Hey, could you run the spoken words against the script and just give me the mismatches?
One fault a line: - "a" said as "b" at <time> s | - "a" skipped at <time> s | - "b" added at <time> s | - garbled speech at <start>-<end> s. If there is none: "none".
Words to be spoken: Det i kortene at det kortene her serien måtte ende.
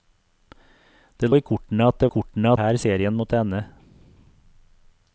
none